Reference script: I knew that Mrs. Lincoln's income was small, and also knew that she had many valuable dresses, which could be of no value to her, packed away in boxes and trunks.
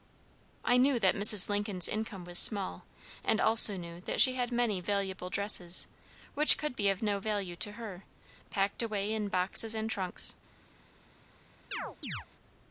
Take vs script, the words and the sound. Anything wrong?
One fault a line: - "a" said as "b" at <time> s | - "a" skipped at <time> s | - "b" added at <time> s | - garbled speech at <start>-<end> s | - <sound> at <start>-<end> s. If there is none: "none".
- chirp at 11.7-12.3 s